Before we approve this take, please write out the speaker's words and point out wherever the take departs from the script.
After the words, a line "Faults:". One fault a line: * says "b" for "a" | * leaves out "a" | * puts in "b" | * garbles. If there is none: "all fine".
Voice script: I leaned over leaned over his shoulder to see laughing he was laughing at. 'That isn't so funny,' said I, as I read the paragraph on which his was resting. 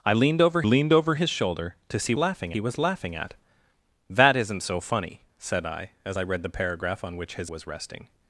I leaned over leaned over his shoulder to see laughing he was laughing at. 'That isn't so funny,' said I, as I read the paragraph on which his was resting.
Faults:
all fine